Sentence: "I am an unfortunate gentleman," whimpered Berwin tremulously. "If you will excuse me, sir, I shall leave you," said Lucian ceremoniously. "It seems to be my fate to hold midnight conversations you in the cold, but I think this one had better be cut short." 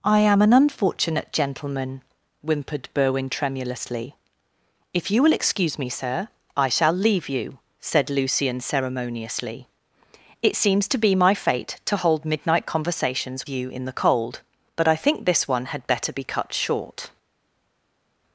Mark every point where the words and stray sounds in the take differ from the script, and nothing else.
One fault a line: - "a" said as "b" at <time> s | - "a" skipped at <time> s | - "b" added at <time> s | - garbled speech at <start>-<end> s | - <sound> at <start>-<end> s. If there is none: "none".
none